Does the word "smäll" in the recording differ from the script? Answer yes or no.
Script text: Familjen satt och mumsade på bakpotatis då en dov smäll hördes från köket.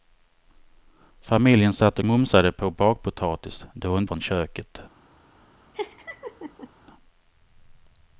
yes